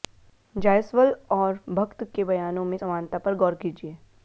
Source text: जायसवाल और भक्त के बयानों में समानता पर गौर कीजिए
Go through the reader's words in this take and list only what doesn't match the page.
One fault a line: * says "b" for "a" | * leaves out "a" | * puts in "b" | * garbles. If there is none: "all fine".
all fine